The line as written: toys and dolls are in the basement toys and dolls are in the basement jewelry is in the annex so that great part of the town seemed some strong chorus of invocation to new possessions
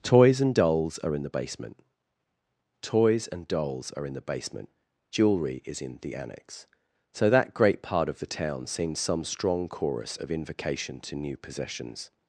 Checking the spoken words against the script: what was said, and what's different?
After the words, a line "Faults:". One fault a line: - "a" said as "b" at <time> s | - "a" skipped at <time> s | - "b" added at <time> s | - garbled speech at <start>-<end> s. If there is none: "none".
toys and dolls are in the basement toys and dolls are in the basement jewelry is in the annex so that great part of the town seemed some strong chorus of invocation to new possessions
Faults:
none